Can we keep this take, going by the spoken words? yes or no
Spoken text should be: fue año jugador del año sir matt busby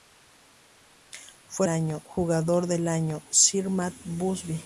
yes